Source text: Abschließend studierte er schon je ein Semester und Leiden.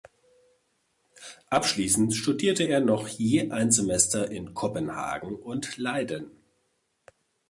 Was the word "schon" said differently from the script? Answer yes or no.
yes